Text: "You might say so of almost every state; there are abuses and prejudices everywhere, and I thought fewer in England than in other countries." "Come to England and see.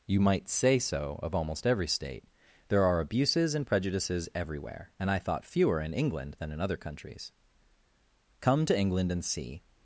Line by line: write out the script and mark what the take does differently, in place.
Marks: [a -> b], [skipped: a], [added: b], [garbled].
"You might say so of almost every state; there are abuses and prejudices everywhere, and I thought fewer in England than in other countries." "Come to England and see.